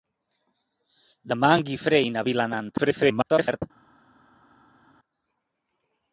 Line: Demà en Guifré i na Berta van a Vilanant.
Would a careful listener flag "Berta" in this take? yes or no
yes